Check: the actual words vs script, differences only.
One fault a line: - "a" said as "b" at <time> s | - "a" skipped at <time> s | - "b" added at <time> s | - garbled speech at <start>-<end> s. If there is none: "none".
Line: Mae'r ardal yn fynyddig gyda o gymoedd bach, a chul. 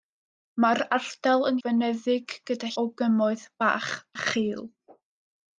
none